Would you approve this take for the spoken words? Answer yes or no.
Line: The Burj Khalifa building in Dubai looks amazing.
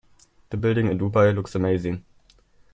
no